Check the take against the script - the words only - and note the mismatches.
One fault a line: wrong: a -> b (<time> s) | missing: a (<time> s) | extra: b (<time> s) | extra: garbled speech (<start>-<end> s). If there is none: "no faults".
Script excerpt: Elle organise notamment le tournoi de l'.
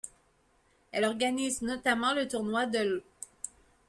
no faults